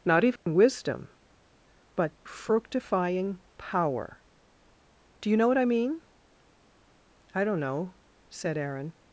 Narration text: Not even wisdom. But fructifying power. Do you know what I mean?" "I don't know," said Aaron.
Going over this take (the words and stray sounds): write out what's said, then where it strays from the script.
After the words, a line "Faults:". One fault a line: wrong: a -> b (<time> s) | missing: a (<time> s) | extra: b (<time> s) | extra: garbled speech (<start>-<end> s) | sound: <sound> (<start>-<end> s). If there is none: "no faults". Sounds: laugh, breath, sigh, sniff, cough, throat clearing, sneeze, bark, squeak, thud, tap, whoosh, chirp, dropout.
Not even wisdom. But fructifying power. Do you know what I mean?" "I don't know," said Aaron.
Faults:
sound: dropout (0.4-0.5 s)